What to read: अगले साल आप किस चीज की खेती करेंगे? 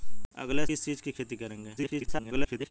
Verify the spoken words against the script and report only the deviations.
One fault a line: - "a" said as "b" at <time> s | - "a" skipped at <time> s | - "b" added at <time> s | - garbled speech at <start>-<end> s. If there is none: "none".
- "साल आप" skipped at 0.7 s
- garbled speech at 1.8-2.7 s